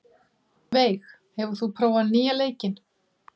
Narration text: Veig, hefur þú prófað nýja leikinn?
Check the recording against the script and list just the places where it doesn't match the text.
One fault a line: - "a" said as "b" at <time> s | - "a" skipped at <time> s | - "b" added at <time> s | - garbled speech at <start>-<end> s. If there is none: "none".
none